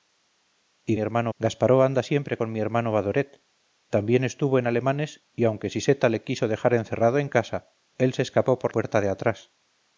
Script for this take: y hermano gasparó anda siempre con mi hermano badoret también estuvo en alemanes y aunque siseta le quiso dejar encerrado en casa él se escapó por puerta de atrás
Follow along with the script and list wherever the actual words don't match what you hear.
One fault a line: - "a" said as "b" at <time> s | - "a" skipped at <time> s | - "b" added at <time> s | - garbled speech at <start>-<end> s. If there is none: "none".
none